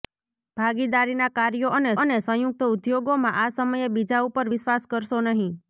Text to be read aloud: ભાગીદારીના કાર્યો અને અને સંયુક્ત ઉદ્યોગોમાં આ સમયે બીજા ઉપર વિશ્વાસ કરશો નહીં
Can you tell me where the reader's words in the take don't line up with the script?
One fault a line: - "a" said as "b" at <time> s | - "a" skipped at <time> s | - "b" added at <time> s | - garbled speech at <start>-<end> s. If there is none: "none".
none